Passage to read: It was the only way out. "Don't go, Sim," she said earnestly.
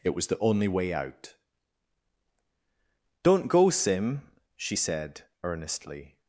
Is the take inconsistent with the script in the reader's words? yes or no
no